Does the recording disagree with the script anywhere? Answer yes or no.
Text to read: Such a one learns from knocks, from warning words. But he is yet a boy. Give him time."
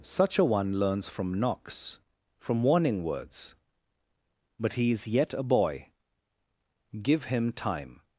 no